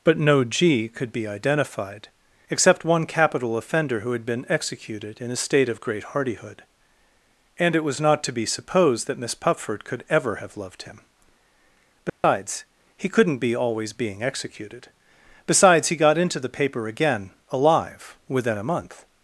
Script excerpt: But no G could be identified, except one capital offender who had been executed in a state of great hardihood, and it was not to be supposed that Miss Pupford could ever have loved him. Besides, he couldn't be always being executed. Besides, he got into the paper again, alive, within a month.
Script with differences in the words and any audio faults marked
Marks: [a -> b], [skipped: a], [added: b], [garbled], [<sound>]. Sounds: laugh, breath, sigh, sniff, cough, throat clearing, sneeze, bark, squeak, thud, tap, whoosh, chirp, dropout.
But no G could be identified, except one capital offender who had been executed in a state of great hardihood, and it was not to be supposed that Miss Pupford could ever have loved him. Besides, [dropout] he couldn't be always being executed. Besides, he got into the paper again, alive, within a month.